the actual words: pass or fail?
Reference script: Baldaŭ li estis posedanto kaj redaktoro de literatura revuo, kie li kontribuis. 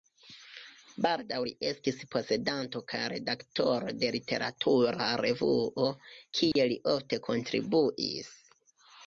fail